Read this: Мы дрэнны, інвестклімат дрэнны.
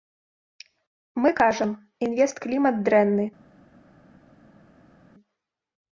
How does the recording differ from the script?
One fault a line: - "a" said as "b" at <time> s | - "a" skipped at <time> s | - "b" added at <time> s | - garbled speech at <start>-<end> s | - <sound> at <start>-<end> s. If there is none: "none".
- "дрэнны" said as "кажам" at 1.4 s